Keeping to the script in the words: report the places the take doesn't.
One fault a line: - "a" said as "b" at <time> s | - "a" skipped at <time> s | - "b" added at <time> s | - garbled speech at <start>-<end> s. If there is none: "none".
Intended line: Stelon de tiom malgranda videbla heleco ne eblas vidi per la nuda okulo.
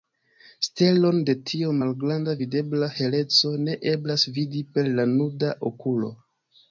none